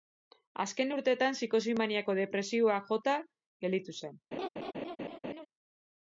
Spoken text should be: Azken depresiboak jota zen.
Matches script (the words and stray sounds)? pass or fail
fail